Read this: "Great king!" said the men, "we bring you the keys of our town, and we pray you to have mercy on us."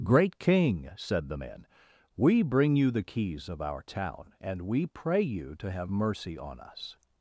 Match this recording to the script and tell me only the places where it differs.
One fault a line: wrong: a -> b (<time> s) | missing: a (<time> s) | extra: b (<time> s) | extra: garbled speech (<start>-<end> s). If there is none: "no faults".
no faults